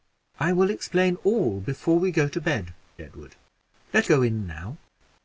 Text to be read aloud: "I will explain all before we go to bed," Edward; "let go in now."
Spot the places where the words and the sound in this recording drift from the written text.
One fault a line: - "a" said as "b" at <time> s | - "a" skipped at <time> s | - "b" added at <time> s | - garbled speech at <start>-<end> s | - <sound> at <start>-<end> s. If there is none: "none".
none